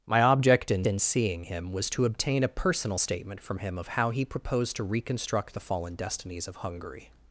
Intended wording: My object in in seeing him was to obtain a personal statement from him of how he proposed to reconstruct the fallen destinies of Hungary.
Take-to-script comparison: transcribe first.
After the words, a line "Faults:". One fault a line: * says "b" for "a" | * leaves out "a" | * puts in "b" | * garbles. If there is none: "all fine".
My object in in seeing him was to obtain a personal statement from him of how he proposed to reconstruct the fallen destinies of Hungary.
Faults:
all fine